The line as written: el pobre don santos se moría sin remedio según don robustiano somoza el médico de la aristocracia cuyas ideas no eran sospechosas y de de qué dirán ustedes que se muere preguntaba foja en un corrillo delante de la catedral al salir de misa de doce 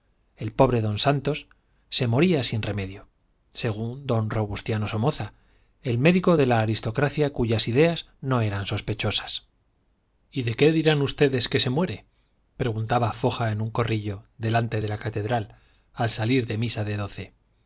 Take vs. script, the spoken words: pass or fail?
fail